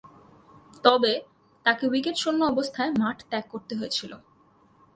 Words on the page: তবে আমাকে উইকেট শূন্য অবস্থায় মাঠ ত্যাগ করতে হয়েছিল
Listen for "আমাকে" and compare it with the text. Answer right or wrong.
wrong